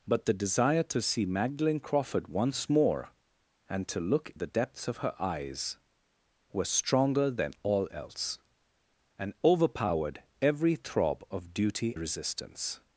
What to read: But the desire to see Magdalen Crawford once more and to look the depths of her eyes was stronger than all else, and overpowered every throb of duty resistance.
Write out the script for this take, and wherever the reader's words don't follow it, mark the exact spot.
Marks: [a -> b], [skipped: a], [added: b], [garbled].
But the desire to see Magdalen Crawford once more and to look the depths of her eyes was stronger than all else, and overpowered every throb of duty resistance.